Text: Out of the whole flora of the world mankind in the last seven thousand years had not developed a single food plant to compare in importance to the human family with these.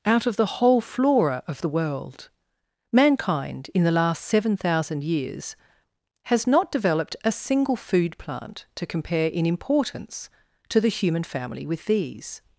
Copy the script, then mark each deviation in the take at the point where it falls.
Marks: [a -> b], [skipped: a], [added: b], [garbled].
Out of the whole flora of the world mankind in the last seven thousand years [had -> has] not developed a single food plant to compare in importance to the human family with these.